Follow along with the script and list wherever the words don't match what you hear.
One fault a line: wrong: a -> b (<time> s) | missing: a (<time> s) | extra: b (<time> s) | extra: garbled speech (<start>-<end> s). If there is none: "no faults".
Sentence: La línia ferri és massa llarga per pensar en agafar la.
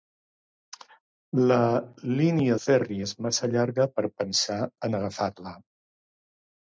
no faults